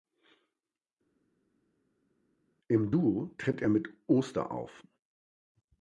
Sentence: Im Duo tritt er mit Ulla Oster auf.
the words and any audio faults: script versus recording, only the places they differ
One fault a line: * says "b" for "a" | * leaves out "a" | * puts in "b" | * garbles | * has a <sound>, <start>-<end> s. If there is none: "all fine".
* leaves out "Ulla"